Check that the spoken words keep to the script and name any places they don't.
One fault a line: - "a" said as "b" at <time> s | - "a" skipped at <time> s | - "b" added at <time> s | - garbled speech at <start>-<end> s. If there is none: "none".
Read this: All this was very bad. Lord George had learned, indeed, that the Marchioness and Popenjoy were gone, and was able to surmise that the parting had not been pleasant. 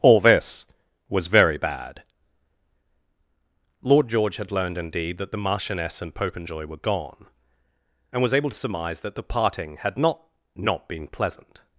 - "not" added at 10.6 s